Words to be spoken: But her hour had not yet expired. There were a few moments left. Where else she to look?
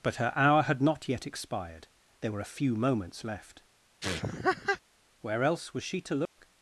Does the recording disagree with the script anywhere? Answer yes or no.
yes